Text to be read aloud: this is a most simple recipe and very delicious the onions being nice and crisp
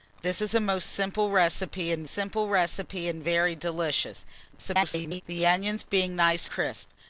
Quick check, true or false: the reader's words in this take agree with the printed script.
false